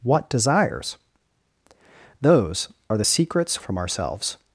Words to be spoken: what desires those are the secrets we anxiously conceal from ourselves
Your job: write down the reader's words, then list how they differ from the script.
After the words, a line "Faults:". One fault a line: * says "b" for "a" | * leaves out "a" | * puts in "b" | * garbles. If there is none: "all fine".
what desires those are the secrets from ourselves
Faults:
* leaves out "we anxiously conceal"